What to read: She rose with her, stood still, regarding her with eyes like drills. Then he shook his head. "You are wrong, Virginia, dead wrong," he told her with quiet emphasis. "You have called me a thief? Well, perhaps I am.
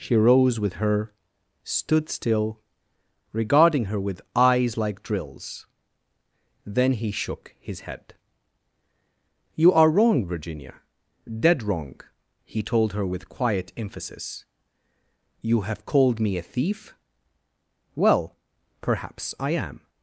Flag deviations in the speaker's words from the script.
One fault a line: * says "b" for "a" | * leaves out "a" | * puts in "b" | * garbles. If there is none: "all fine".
all fine